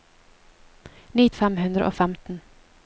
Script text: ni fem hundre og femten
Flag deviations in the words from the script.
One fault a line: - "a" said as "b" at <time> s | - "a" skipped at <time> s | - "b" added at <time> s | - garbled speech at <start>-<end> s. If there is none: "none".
none